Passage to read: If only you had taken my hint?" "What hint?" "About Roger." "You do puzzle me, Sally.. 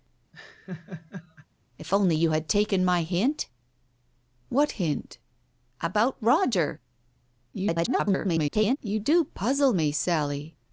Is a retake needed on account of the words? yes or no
yes